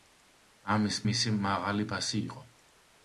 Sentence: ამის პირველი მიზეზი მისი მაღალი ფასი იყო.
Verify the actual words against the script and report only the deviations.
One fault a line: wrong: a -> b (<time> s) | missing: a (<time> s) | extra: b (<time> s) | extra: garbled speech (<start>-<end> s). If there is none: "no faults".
missing: პირველი მიზეზი (0.9 s)